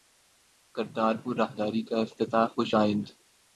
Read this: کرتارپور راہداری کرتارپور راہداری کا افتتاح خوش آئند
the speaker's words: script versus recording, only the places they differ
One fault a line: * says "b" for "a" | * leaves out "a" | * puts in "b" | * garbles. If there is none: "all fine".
* leaves out "کرتارپور راہداری"